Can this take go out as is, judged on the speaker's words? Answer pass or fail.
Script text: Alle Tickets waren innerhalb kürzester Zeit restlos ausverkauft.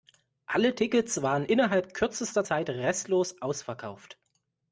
pass